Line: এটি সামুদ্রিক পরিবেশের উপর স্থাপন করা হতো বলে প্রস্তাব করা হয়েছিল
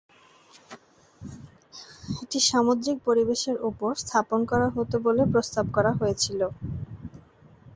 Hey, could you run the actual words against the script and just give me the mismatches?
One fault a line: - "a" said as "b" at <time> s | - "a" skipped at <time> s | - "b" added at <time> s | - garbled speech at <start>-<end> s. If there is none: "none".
none